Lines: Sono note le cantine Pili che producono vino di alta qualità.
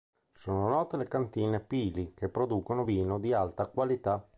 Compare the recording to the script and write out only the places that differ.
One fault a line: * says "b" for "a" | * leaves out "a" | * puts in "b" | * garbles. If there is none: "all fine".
all fine